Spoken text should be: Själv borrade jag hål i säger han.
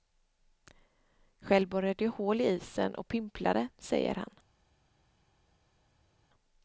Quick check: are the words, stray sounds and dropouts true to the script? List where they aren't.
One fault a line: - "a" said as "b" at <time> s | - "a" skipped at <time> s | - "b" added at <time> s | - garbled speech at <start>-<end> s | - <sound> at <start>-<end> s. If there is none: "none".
- "isen och pimplade" added at 2.5 s